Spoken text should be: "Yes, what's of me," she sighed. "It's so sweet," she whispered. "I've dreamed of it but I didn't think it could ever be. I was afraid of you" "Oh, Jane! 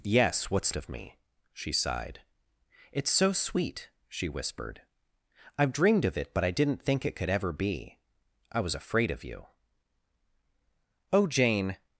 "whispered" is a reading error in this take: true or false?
false